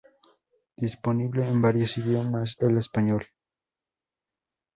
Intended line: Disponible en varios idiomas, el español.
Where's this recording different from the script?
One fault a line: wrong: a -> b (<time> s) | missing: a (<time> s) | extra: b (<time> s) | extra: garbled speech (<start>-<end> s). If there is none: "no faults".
no faults